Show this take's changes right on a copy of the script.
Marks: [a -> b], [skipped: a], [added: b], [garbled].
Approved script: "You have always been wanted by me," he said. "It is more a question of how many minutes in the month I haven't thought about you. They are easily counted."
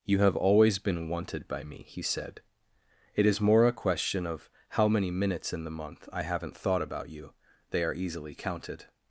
"You have always been wanted by me," he said. "It is more a question of how many minutes in the month I haven't thought about you. They are easily counted."